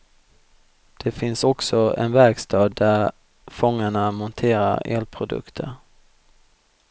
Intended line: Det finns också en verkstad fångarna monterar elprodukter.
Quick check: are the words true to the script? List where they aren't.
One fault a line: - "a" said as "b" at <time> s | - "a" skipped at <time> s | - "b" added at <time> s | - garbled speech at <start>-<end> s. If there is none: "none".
- "där" added at 2.7 s